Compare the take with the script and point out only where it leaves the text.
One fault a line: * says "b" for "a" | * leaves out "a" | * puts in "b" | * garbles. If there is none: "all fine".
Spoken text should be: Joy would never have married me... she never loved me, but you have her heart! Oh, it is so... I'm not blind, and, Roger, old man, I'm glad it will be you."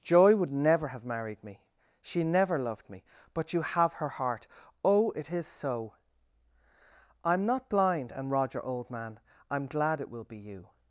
all fine